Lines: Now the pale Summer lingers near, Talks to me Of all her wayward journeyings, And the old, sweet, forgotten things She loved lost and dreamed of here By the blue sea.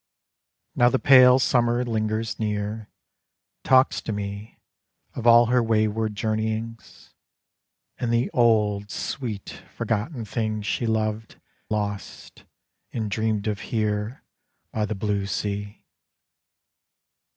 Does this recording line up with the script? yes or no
yes